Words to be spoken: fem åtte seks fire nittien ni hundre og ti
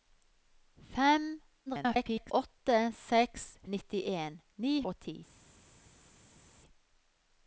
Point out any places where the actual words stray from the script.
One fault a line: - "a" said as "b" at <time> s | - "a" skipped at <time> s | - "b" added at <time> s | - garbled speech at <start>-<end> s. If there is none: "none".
- garbled speech at 1.7-2.3 s
- "fire" skipped at 3.4 s
- "hundre" skipped at 4.7 s